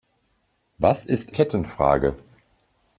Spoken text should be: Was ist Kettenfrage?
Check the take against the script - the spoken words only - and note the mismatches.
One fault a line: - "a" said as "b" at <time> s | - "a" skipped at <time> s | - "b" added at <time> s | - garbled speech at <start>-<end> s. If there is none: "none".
none